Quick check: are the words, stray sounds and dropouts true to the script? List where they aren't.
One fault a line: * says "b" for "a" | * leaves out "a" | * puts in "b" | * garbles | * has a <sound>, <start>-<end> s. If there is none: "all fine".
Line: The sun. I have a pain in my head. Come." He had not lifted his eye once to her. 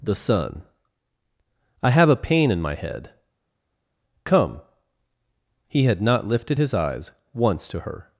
* says "eyes" for "eye"